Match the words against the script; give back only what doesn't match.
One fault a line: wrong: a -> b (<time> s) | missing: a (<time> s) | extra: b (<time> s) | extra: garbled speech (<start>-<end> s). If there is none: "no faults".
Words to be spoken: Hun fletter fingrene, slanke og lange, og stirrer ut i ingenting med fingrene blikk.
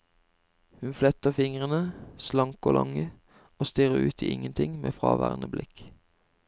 wrong: fingrene -> fraværende (4.9 s)